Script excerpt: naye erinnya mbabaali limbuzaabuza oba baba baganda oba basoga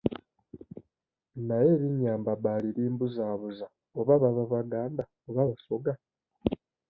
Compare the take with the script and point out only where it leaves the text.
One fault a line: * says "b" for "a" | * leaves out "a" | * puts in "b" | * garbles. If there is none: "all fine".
all fine